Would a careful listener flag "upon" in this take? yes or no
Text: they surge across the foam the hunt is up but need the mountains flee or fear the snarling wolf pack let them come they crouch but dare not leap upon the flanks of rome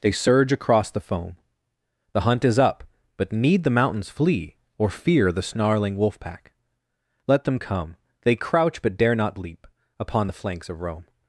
no